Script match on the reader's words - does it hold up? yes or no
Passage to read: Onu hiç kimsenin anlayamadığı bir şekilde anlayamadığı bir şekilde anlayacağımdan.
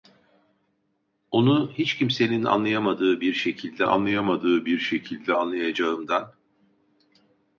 yes